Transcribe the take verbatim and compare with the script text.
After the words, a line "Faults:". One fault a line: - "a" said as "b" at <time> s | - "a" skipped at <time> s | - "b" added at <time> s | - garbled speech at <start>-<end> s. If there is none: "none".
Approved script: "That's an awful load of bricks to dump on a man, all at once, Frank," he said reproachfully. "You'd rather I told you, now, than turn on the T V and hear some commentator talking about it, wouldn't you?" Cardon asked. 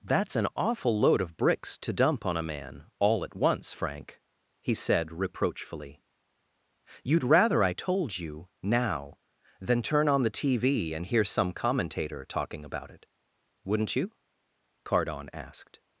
"That's an awful load of bricks to dump on a man, all at once, Frank," he said reproachfully. "You'd rather I told you, now, than turn on the T V and hear some commentator talking about it, wouldn't you?" Cardon asked.
Faults:
none